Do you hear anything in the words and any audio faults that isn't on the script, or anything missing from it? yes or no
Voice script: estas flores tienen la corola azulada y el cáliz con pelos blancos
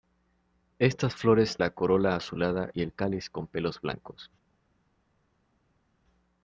yes